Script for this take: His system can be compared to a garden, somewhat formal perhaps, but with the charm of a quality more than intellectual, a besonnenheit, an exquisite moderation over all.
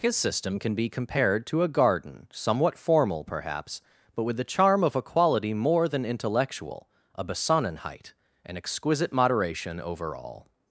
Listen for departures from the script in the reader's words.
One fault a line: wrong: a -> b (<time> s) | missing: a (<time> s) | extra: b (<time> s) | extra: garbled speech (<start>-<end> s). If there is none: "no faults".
no faults